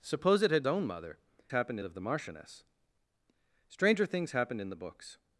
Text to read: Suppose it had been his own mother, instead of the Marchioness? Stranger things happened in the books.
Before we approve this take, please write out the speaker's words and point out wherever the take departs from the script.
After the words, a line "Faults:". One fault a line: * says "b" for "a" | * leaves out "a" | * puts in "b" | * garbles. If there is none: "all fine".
Suppose it had own mother, happened of the Marchioness? Stranger things happened in the books.
Faults:
* leaves out "been his"
* says "happened" for "instead"